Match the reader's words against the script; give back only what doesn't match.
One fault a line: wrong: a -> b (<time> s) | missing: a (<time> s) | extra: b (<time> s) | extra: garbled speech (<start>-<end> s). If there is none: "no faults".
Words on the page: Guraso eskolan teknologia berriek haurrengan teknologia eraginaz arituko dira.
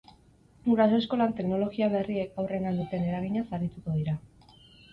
wrong: teknologia -> duten (2.8 s)